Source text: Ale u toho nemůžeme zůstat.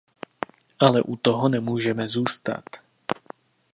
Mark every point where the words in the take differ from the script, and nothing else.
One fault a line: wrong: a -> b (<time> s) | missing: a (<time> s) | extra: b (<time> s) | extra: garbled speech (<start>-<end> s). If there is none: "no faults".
no faults